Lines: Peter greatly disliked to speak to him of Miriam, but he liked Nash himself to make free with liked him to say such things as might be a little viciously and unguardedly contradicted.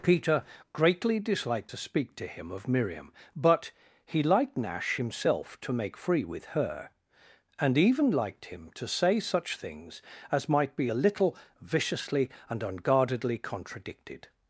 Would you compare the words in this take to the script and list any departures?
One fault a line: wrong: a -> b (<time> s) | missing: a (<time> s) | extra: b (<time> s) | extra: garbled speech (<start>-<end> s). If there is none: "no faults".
extra: her and even (6.5 s)